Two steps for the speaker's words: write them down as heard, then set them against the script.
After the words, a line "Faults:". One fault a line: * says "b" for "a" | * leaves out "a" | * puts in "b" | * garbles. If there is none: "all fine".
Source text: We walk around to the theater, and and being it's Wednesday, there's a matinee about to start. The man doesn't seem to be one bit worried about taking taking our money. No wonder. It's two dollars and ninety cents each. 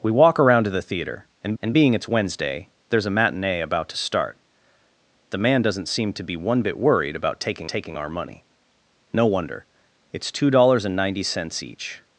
We walk around to the theater, and and being it's Wednesday, there's a matinee about to start. The man doesn't seem to be one bit worried about taking taking our money. No wonder. It's two dollars and ninety cents each.
Faults:
all fine